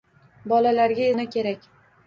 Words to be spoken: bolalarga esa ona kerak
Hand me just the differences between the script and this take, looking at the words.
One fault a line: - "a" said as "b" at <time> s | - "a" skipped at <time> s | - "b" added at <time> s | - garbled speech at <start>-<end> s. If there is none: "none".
- "esa" skipped at 1.1 s